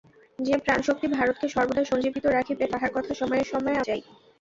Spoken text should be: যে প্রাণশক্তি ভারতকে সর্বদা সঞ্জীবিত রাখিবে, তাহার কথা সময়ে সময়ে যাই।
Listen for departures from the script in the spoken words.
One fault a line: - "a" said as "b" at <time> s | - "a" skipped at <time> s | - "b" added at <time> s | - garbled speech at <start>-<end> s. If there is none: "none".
none